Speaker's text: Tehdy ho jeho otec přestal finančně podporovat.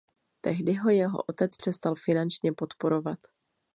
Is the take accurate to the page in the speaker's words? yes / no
yes